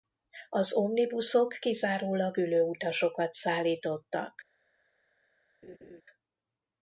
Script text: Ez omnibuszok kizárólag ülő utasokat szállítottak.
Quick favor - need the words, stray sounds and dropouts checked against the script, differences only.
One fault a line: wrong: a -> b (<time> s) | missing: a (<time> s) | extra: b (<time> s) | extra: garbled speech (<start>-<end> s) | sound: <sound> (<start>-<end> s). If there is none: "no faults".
wrong: Ez -> Az (0.5 s)
sound: laugh (5.6-6.0 s)